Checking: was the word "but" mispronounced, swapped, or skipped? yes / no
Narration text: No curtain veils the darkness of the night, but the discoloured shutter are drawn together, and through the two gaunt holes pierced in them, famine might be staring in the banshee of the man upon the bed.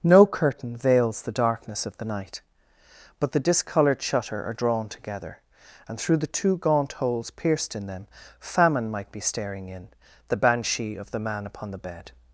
no